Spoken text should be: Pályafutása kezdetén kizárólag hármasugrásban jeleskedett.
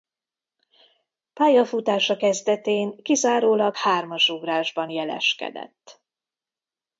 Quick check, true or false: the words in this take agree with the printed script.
true